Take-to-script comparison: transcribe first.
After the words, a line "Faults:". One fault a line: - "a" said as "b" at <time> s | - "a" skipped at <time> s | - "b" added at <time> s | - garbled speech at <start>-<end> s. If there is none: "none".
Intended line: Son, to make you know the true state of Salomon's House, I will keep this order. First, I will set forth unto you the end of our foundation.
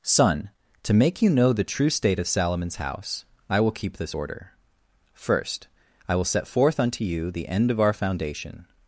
Son, to make you know the true state of Salomon's House, I will keep this order. First, I will set forth unto you the end of our foundation.
Faults:
none